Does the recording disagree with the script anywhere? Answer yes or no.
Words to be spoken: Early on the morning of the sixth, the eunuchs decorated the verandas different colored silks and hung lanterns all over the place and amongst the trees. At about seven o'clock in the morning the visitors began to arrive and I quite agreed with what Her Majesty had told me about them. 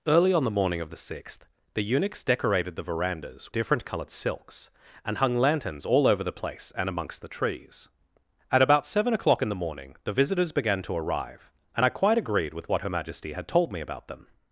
no